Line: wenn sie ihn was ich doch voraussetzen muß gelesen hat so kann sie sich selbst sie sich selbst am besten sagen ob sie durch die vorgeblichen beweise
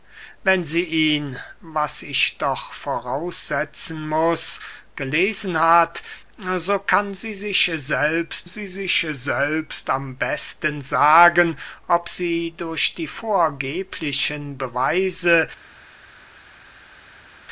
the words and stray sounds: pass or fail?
pass